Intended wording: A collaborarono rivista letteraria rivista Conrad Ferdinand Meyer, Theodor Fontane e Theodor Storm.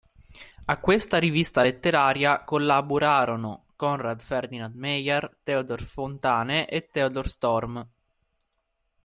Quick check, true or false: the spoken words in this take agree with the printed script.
false